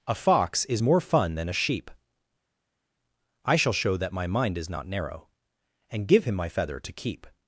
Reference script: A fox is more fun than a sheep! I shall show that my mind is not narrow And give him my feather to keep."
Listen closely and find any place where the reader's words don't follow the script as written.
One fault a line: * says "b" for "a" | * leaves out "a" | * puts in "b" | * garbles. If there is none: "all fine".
all fine